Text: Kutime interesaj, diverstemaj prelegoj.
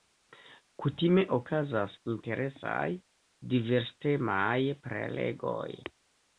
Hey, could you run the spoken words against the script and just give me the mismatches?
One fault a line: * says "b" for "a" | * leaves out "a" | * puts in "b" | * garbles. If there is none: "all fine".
* puts in "okazas"